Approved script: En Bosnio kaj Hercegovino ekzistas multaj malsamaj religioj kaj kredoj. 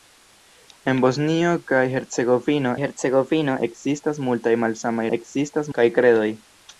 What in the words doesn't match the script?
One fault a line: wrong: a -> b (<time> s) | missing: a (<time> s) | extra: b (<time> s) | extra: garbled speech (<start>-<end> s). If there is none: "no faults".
extra: Hercegovino (2.8 s)
wrong: religioj -> ekzistas (5.2 s)